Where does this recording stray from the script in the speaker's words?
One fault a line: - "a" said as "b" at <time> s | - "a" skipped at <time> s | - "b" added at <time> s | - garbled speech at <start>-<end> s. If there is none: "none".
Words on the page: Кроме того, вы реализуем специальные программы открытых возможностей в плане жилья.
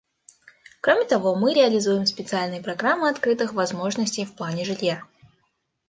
- "вы" said as "мы" at 1.4 s